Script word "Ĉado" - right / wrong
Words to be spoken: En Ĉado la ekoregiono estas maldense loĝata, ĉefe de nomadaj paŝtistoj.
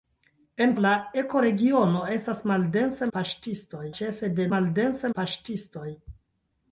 wrong